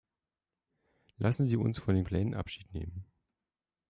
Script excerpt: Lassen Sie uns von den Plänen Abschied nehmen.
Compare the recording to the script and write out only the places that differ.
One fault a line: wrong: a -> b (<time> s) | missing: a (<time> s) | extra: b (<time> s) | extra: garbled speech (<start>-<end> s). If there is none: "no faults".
no faults